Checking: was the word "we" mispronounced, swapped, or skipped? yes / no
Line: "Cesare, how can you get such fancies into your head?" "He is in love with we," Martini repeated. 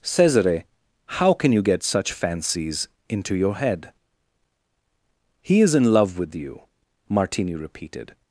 yes